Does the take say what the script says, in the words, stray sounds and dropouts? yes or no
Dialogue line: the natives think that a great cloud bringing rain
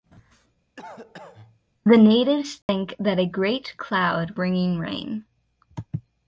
no